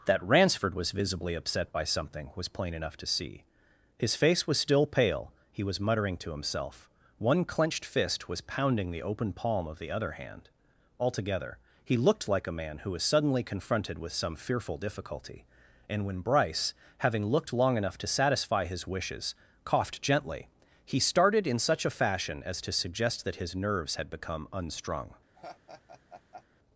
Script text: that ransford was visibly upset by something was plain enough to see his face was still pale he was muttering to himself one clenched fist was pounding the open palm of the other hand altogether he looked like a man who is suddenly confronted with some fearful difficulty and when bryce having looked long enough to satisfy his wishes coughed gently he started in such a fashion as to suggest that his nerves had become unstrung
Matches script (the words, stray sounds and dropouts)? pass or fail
fail